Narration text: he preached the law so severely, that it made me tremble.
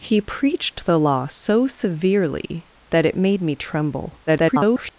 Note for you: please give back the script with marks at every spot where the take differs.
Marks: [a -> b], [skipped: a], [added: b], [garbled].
he preached the law so severely, that it made me tremble. [garbled]